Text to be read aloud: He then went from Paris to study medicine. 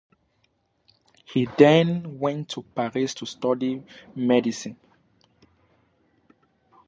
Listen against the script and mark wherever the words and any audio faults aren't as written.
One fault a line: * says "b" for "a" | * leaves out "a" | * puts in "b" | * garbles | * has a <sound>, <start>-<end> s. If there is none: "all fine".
* says "to" for "from"